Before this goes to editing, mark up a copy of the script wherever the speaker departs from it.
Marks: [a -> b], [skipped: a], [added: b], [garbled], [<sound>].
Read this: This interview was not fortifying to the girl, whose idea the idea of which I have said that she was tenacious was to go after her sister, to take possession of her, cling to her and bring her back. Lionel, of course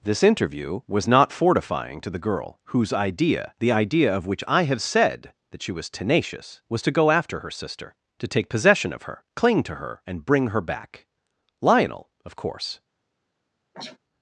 This interview was not fortifying to the girl, whose idea the idea of which I have said that she was tenacious was to go after her sister, to take possession of her, cling to her and bring her back. Lionel, of course [sneeze]